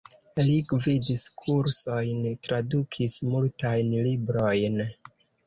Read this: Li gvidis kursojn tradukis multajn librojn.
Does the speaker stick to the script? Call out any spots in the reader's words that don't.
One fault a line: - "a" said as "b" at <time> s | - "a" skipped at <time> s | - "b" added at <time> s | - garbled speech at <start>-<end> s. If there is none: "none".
none